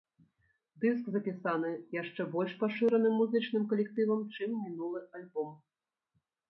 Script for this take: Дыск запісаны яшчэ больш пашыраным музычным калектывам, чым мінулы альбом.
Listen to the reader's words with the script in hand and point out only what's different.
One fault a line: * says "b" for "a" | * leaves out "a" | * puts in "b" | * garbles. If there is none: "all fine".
all fine